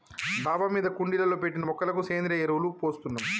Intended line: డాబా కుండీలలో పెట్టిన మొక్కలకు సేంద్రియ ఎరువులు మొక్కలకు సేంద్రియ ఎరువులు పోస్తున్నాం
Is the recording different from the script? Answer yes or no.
yes